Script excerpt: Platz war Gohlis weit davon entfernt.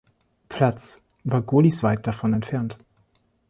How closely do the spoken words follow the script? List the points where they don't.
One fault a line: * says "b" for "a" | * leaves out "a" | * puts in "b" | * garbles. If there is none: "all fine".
all fine